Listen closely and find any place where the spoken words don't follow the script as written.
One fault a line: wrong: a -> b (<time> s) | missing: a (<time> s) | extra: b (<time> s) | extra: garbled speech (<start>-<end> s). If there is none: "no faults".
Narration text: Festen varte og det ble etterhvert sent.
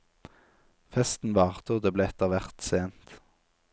no faults